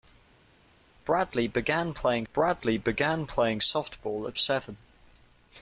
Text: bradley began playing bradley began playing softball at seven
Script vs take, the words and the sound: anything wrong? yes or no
no